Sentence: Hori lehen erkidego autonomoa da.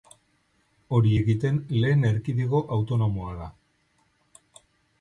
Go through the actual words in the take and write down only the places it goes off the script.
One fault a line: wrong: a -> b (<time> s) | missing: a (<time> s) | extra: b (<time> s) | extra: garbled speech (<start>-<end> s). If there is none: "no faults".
extra: egiten (1.2 s)